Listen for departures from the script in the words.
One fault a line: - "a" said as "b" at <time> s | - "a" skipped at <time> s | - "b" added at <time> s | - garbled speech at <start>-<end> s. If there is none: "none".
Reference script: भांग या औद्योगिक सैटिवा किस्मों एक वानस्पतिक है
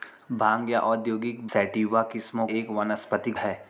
none